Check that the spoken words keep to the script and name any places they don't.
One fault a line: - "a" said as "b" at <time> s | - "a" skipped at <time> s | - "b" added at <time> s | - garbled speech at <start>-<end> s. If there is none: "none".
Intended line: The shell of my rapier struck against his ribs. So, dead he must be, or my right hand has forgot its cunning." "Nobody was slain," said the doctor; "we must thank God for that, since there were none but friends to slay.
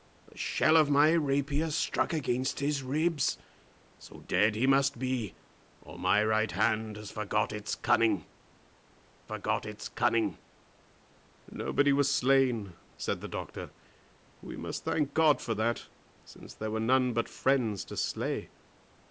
- "forgot its cunning" added at 9.2 s